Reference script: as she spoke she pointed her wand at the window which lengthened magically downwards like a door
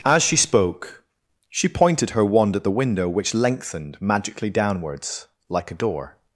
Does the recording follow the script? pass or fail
pass